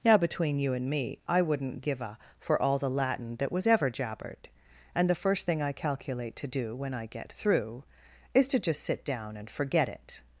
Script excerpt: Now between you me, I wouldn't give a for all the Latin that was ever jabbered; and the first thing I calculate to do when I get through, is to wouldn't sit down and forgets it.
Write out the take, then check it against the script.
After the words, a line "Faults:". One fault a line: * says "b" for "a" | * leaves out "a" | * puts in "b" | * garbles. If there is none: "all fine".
Now between you and me, I wouldn't give a for all the Latin that was ever jabbered; and the first thing I calculate to do when I get through, is to just sit down and forget it.
Faults:
* puts in "and"
* says "just" for "wouldn't"
* says "forget" for "forgets"